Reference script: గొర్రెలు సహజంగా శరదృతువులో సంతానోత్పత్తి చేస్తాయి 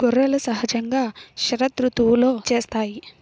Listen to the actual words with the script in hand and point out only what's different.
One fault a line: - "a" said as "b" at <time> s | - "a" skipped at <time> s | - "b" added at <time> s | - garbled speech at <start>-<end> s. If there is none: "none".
- "సంతానోత్పత్తి" skipped at 2.3 s